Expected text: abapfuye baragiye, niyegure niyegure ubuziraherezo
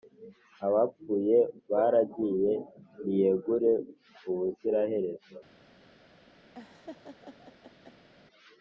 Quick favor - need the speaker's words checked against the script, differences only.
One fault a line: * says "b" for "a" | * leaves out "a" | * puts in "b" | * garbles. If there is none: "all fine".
* leaves out "niyegure"